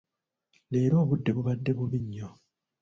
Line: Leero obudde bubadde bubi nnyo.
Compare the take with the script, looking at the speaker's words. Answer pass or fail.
pass